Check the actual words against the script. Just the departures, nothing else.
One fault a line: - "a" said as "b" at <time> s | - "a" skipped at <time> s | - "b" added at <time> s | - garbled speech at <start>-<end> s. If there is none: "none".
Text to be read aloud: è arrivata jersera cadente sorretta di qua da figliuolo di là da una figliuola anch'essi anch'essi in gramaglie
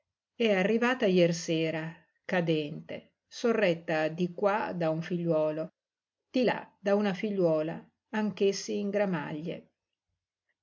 - "un" added at 4.9 s
- "anch'essi" skipped at 8.8 s